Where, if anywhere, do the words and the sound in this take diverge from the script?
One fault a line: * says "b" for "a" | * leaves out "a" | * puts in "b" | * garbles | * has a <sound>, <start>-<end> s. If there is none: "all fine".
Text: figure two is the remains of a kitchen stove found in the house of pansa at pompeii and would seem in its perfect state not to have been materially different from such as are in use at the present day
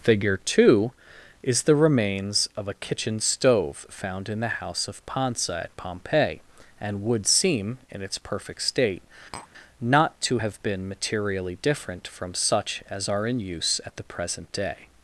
* has a tap, 9.3-9.5 s